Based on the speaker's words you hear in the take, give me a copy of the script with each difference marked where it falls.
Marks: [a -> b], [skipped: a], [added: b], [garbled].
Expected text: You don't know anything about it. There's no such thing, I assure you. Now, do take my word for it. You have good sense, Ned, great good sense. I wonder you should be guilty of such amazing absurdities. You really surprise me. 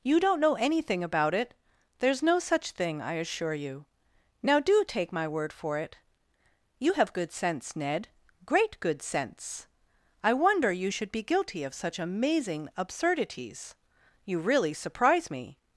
You don't know anything about it. There's no such thing, I assure you. Now, do take my word for it. You have good sense, Ned, great good sense. I wonder you should be guilty of such amazing absurdities. You really surprise me.